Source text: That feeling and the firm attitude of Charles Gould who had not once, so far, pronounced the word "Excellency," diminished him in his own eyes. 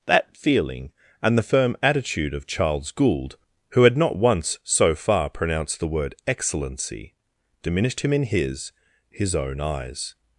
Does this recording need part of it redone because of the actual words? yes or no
yes